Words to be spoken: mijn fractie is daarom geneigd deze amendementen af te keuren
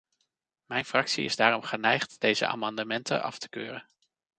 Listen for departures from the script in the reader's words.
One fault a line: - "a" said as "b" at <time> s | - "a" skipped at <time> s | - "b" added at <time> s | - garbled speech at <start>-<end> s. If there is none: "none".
none